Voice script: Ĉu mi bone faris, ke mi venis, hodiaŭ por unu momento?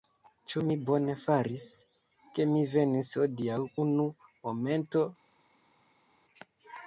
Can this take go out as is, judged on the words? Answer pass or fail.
fail